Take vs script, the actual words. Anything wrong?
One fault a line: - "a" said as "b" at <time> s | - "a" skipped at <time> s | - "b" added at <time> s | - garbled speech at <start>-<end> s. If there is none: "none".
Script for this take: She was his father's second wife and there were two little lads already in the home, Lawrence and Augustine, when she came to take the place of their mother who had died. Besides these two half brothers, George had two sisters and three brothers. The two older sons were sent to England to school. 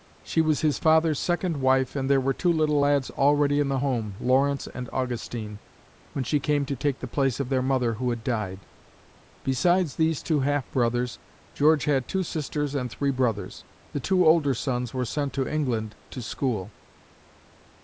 none